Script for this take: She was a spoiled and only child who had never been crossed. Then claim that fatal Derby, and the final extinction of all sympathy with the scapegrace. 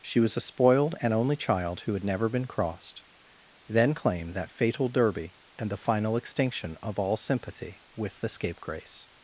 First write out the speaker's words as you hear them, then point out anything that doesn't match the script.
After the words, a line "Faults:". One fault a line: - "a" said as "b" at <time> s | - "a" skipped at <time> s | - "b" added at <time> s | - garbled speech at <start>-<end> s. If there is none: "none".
She was a spoiled and only child who had never been crossed. Then claim that fatal Derby, and the final extinction of all sympathy with the scapegrace.
Faults:
none